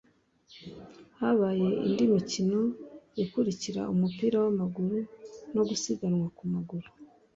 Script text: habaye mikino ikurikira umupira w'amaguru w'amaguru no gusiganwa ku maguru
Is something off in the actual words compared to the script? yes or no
yes